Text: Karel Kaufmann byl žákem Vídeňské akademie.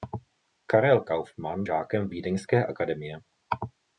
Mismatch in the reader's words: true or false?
true